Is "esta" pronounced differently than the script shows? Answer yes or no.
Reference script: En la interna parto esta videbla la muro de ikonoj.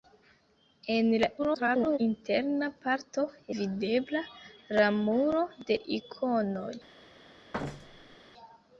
yes